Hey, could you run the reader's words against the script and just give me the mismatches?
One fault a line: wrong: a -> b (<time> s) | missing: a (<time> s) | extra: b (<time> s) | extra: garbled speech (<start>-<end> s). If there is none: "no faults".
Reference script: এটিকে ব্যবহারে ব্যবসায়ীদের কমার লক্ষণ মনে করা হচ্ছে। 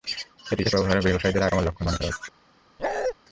no faults